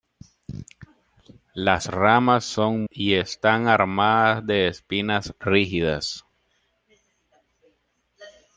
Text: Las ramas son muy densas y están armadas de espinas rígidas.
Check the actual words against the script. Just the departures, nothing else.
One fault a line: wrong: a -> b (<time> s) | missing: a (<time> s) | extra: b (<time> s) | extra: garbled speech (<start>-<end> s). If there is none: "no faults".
missing: muy densas (2.9 s)